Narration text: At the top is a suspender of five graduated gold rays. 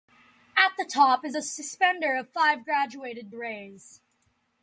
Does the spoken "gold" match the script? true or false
false